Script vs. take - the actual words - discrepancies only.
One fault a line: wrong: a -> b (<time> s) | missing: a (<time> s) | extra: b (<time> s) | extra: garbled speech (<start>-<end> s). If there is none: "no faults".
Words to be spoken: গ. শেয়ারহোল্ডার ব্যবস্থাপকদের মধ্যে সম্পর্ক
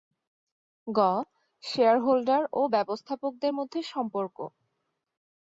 extra: ও (2.5 s)